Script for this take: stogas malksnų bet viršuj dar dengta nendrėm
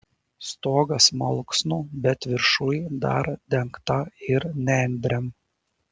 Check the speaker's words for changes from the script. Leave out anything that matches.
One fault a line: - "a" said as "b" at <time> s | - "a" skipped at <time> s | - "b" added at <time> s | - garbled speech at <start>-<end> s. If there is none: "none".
- "ir" added at 4.3 s